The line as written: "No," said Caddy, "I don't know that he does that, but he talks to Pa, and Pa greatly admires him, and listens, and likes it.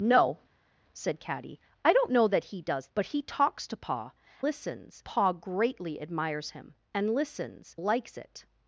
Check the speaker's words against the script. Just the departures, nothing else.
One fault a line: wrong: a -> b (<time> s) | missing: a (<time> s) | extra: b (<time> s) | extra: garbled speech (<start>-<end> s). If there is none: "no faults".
missing: that (2.9 s)
wrong: and -> listens (4.4 s)
missing: and (7.8 s)